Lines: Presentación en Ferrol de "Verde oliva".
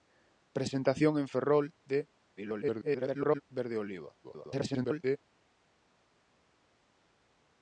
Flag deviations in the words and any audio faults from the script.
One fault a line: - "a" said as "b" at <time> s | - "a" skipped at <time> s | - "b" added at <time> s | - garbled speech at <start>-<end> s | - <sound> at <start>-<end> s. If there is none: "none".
- garbled speech at 2.4-3.4 s
- garbled speech at 4.2-5.2 s